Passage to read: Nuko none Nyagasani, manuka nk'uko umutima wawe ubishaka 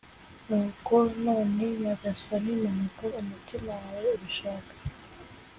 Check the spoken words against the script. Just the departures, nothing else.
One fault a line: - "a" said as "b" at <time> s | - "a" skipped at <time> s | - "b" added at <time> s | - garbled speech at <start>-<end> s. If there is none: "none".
- "nk'uko" skipped at 3.0 s